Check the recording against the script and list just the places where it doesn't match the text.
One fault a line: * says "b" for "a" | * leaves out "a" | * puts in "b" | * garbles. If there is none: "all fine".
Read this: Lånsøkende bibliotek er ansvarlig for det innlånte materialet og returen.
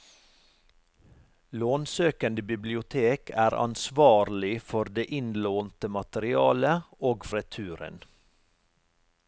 all fine